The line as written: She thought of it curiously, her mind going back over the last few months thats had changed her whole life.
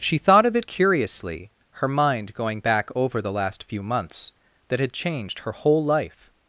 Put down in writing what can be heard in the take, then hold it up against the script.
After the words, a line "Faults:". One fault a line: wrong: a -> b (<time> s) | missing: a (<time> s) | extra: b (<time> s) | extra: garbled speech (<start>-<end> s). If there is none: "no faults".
She thought of it curiously, her mind going back over the last few months that had changed her whole life.
Faults:
wrong: thats -> that (4.7 s)